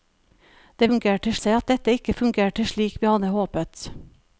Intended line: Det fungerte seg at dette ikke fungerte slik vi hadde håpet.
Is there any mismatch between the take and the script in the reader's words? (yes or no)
no